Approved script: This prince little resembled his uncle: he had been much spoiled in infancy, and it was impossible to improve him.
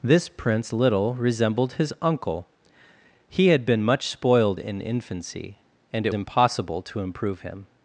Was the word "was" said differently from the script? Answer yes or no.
yes